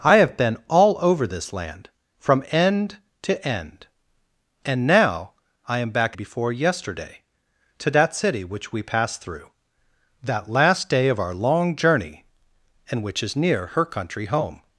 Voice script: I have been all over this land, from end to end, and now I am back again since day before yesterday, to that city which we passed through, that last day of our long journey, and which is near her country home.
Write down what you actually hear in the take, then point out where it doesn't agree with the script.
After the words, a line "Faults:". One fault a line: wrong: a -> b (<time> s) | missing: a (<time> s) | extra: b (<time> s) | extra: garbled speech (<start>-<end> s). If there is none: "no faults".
I have been all over this land, from end to end, and now I am back before yesterday, to that city which we passed through, that last day of our long journey, and which is near her country home.
Faults:
missing: again since day (6.2 s)